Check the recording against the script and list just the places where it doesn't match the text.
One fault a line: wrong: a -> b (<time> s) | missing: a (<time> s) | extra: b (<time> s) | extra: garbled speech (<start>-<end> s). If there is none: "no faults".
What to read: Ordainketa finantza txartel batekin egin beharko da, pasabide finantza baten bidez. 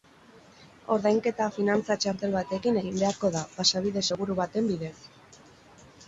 wrong: finantza -> seguru (4.1 s)